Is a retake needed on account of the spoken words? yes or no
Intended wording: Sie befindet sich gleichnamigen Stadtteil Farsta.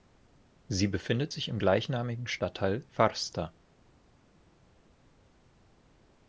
yes